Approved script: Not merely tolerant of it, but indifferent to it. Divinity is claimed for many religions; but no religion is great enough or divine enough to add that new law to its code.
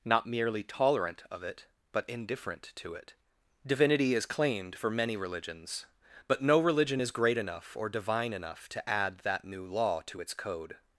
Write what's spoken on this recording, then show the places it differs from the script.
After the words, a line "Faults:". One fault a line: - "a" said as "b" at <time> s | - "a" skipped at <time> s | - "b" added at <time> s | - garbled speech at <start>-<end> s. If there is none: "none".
Not merely tolerant of it, but indifferent to it. Divinity is claimed for many religions; but no religion is great enough or divine enough to add that new law to its code.
Faults:
none